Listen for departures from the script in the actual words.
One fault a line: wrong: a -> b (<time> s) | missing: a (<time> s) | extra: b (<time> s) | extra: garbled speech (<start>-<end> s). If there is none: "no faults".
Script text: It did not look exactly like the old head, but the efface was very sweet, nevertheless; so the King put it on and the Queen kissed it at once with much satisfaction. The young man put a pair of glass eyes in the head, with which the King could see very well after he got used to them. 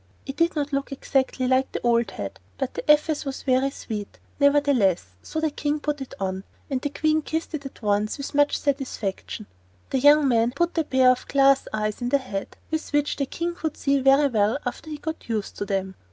no faults